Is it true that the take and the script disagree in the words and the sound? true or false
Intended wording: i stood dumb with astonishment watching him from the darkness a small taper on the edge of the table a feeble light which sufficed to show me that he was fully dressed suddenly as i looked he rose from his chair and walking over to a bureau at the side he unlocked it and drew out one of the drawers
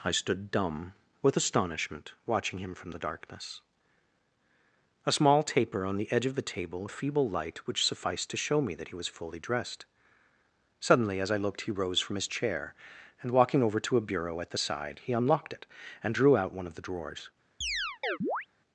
true